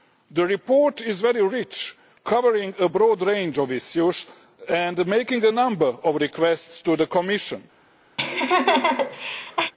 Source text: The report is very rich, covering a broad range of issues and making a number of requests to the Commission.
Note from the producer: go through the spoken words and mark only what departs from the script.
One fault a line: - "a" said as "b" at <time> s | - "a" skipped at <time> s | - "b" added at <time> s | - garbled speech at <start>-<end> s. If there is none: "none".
none